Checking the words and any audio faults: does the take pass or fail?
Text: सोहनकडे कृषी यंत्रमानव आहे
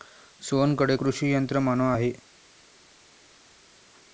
pass